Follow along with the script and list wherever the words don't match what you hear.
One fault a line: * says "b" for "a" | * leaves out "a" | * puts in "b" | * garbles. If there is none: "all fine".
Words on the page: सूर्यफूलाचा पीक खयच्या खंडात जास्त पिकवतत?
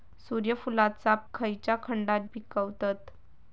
* leaves out "पीक"
* leaves out "जास्त"